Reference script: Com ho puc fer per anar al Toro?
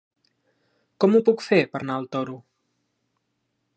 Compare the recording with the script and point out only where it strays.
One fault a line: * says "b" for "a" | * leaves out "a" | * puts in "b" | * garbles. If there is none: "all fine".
all fine